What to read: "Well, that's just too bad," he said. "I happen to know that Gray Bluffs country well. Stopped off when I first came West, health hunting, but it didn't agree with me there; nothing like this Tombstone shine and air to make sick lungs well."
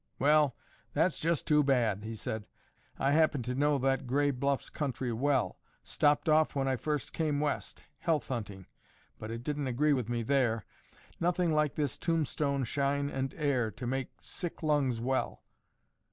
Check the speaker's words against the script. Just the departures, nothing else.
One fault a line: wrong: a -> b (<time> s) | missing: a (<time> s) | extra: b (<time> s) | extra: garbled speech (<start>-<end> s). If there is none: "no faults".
no faults